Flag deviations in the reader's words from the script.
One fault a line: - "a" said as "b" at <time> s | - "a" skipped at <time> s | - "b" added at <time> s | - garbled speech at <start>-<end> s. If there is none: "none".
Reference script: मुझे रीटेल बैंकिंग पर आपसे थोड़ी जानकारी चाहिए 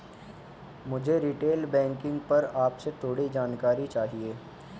none